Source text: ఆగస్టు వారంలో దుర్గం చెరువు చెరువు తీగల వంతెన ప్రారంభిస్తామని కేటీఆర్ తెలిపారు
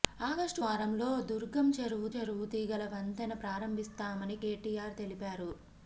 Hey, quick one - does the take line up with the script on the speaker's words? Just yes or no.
yes